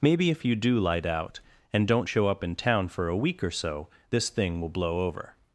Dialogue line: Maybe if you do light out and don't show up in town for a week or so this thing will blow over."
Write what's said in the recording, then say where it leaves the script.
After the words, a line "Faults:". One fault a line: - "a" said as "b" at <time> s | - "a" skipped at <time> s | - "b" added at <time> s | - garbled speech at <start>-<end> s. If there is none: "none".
Maybe if you do light out and don't show up in town for a week or so this thing will blow over."
Faults:
none